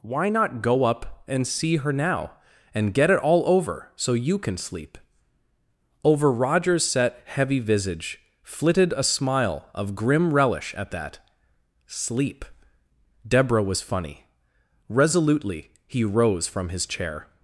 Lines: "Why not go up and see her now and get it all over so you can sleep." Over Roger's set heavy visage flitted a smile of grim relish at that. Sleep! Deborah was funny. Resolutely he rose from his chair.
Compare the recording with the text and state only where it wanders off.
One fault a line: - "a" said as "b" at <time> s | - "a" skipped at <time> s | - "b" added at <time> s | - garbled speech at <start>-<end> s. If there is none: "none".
none